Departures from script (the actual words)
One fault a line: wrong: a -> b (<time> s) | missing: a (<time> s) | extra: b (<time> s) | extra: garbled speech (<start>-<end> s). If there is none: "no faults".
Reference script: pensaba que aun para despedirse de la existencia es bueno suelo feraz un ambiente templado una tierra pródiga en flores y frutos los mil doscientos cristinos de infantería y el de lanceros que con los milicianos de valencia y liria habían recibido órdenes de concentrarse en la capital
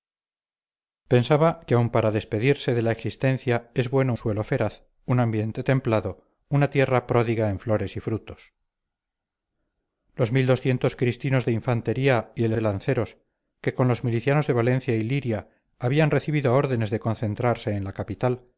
no faults